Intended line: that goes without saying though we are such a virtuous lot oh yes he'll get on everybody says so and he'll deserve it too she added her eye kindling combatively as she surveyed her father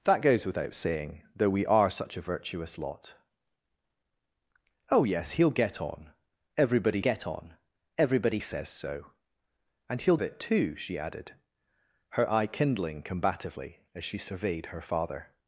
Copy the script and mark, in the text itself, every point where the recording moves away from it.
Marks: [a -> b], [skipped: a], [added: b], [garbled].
that goes without saying though we are such a virtuous lot oh yes he'll get on everybody [added: get on everybody] says so and he'll [skipped: deserve] it too she added her eye kindling combatively as she surveyed her father